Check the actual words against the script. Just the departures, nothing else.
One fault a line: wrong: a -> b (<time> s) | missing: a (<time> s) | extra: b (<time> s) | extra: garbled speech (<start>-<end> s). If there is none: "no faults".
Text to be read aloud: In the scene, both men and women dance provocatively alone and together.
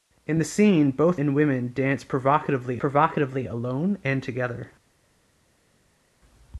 missing: men (1.2 s)
extra: provocatively (2.8 s)